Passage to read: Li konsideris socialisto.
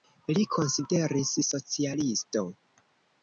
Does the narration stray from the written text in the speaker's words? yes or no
no